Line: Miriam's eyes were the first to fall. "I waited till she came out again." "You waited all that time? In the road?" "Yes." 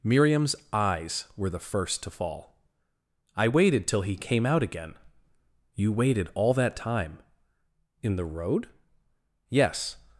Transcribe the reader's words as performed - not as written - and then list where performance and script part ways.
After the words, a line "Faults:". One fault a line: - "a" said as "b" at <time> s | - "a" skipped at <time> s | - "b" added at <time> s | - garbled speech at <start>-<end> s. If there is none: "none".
Miriam's eyes were the first to fall. "I waited till he came out again." "You waited all that time? In the road?" "Yes."
Faults:
- "she" said as "he" at 4.0 s